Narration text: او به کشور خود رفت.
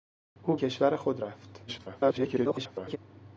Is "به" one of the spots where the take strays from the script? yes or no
yes